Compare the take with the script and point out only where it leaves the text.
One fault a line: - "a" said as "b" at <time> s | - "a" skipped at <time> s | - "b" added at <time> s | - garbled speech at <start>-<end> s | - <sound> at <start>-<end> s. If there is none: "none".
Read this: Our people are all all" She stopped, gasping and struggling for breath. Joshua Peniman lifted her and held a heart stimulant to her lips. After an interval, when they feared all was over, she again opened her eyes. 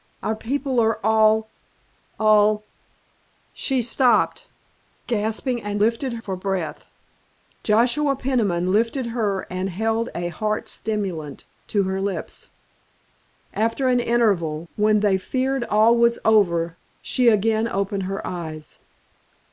- "struggling" said as "lifted" at 5.8 s